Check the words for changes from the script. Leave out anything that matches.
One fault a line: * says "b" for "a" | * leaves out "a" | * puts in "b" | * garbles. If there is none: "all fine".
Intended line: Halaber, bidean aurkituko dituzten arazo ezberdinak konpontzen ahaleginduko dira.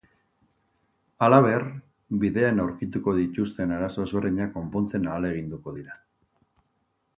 all fine